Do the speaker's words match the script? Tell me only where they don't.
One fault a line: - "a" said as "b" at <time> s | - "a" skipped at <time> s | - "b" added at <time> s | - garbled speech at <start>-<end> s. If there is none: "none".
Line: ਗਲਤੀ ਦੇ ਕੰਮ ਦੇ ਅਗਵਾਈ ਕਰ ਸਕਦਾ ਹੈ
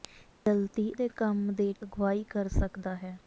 none